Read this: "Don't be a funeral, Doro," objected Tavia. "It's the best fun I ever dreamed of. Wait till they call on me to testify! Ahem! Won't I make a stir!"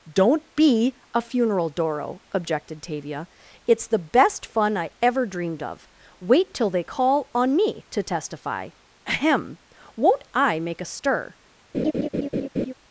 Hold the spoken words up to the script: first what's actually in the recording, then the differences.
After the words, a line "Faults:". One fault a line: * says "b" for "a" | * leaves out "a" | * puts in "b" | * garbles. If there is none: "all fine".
"Don't be a funeral, Doro," objected Tavia. "It's the best fun I ever dreamed of. Wait till they call on me to testify! Ahem! Won't I make a stir!"
Faults:
all fine